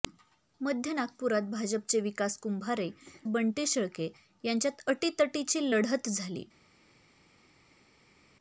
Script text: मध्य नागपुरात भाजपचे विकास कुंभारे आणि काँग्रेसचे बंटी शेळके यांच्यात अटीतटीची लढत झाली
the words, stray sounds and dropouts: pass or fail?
fail